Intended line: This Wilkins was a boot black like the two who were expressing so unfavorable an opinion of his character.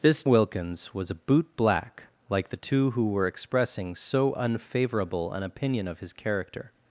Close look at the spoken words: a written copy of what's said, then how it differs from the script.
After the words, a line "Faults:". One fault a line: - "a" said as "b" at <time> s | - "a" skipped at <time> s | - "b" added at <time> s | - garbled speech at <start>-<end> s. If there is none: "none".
This Wilkins was a boot black like the two who were expressing so unfavorable an opinion of his character.
Faults:
none